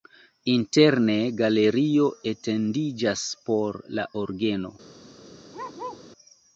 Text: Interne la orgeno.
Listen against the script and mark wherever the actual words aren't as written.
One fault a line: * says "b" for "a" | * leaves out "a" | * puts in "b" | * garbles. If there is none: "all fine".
* puts in "galerio etendiĝas por"